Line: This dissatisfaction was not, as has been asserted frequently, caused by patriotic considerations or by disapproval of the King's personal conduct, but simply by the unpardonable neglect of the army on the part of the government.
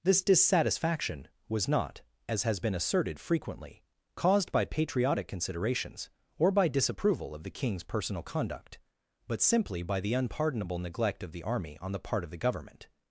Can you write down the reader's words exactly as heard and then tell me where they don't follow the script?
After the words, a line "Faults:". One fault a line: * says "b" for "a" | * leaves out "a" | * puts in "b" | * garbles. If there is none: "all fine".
This dissatisfaction was not, as has been asserted frequently, caused by patriotic considerations or by disapproval of the King's personal conduct, but simply by the unpardonable neglect of the army on the part of the government.
Faults:
all fine